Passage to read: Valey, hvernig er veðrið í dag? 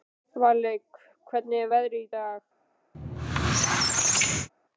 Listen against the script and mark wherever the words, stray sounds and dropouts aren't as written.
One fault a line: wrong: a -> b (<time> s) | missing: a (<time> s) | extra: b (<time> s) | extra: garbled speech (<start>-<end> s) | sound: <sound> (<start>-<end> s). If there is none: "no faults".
sound: squeak (2.9-4.5 s)